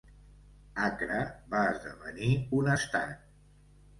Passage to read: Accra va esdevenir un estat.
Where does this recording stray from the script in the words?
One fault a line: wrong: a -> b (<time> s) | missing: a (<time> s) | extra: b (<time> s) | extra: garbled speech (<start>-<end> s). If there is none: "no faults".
no faults